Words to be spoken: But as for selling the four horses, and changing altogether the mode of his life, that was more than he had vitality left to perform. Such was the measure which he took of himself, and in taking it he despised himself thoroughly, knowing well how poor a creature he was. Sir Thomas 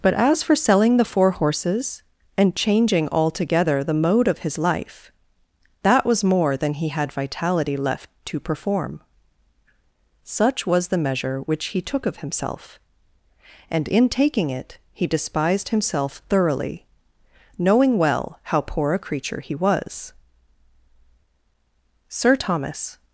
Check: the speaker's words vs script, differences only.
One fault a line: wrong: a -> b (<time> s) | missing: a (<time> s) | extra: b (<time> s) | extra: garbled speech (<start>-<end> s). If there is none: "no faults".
no faults